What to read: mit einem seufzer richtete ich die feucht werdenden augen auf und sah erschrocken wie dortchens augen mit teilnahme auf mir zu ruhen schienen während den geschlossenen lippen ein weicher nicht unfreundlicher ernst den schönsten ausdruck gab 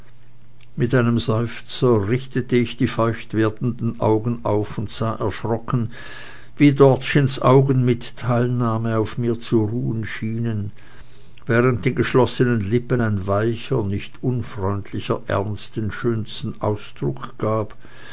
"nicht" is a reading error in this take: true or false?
false